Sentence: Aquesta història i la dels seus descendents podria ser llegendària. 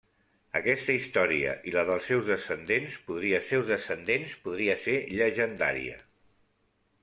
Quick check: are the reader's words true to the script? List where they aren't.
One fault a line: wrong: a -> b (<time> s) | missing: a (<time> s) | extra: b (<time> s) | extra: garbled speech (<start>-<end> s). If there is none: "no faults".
extra: seus descendents podria (3.5 s)